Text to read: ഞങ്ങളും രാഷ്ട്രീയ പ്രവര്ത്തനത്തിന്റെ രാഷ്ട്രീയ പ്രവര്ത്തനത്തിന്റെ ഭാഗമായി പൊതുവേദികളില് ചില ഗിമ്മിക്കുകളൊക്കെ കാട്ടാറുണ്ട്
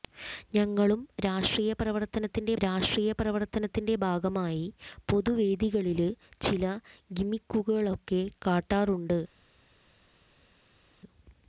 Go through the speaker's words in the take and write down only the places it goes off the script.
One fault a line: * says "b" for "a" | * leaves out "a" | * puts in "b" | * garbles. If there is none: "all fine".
all fine